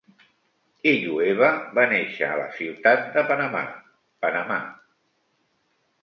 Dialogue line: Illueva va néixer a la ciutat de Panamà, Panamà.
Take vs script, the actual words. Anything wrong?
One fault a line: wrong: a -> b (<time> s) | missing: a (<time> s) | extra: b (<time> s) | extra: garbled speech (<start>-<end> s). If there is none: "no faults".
no faults